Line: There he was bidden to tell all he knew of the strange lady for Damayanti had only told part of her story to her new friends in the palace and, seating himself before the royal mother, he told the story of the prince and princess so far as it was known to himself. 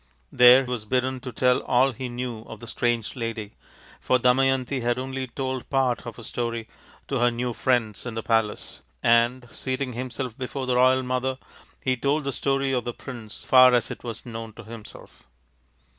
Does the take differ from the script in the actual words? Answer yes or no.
yes